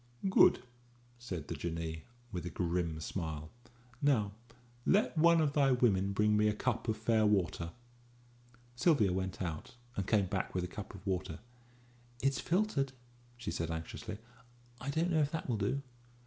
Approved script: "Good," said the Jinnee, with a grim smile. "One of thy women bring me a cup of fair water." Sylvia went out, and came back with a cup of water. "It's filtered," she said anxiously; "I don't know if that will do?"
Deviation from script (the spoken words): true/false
true